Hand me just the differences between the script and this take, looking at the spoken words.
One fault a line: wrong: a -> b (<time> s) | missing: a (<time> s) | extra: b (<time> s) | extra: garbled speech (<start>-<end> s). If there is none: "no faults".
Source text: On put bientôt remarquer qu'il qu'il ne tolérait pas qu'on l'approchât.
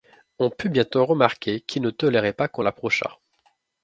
missing: qu'il (1.8 s)